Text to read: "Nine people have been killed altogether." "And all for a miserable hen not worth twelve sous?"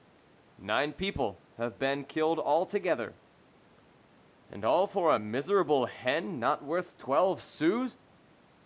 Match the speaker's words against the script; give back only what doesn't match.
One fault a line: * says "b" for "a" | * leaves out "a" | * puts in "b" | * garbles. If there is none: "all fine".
all fine